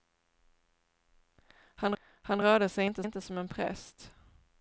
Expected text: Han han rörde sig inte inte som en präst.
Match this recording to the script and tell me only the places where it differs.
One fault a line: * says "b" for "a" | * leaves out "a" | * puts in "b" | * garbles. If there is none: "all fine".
all fine